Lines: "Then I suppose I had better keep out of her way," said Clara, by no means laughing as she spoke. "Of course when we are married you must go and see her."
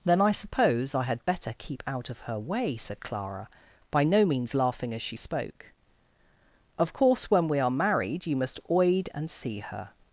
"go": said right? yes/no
no